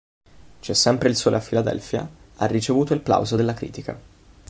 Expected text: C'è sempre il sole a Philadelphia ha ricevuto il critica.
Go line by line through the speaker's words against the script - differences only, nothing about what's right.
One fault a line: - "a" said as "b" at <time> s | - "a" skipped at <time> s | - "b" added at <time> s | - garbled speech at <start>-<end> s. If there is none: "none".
- "plauso della" added at 3.0 s